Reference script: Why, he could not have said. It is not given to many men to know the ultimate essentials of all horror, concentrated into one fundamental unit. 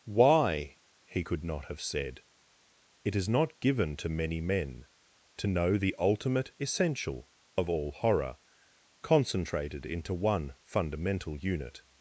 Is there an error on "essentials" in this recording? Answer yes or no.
yes